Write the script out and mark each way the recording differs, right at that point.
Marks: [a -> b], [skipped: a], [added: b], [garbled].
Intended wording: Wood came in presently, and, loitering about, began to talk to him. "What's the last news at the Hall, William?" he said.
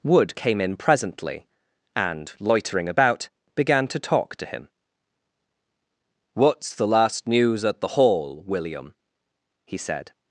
Wood came in presently, and, loitering about, began to talk to him. "What's the last news at the Hall, William?" he said.